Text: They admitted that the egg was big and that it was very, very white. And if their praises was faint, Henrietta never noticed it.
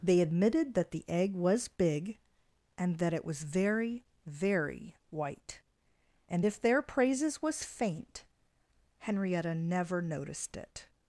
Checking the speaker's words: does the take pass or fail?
pass